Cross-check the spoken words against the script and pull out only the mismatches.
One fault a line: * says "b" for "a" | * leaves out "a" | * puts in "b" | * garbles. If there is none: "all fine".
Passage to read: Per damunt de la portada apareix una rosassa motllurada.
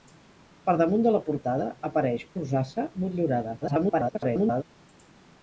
* leaves out "una"
* garbles